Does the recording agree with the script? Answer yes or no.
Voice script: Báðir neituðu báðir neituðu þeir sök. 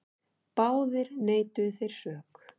no